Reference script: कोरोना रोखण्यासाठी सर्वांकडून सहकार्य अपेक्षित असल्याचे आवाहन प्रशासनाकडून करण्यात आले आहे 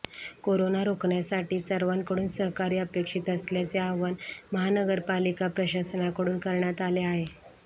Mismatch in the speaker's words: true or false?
true